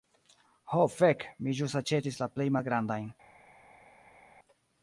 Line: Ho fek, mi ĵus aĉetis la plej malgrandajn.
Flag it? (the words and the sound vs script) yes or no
no